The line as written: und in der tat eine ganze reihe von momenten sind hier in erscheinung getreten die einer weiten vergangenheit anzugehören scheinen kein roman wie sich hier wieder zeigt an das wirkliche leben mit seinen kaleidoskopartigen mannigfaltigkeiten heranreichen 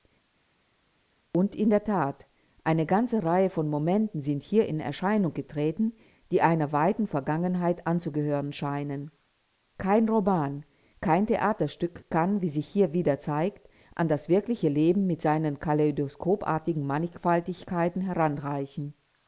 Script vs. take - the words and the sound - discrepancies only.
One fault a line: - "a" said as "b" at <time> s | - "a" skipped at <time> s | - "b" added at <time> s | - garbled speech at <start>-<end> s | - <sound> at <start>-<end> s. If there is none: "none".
- "kein theaterstück kann" added at 11.0 s